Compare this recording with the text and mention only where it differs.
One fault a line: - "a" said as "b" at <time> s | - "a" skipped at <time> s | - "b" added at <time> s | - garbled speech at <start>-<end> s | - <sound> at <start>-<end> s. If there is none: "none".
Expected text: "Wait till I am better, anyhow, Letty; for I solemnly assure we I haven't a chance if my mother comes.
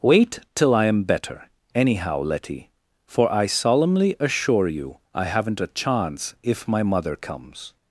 - "we" said as "you" at 4.7 s